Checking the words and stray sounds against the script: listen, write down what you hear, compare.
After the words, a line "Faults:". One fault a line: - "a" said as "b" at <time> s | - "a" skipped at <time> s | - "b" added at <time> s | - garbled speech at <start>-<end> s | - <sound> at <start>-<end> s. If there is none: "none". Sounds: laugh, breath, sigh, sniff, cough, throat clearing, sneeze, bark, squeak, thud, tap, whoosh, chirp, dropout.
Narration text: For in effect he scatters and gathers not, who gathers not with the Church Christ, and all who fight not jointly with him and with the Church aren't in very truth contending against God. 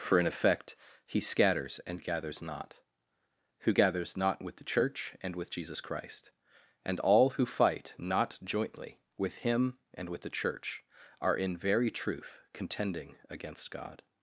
For in effect he scatters and gathers not, who gathers not with the Church and with Jesus Christ, and all who fight not jointly with him and with the Church are in very truth contending against God.
Faults:
- "and with Jesus" added at 5.2 s
- "aren't" said as "are" at 11.2 s